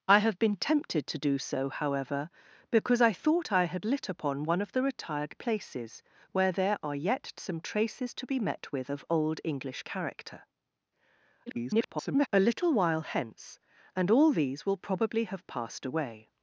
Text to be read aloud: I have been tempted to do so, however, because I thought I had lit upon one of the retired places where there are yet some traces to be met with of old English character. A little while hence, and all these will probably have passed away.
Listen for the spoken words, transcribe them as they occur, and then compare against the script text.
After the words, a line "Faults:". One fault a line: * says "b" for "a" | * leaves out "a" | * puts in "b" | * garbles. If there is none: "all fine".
I have been tempted to do so, however, because I thought I had lit upon one of the retired places where there are yet some traces to be met with of old English character. [garbled] A little while hence, and all these will probably have passed away.
Faults:
* garbles